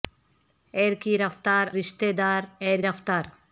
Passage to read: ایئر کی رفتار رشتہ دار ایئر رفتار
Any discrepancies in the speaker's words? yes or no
no